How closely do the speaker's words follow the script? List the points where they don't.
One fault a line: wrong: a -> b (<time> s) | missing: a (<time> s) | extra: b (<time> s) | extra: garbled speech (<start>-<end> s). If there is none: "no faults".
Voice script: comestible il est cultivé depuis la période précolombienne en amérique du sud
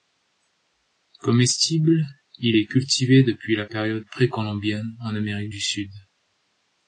no faults